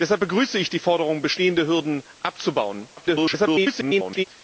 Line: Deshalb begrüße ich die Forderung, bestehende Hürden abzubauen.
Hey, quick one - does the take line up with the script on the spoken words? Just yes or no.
no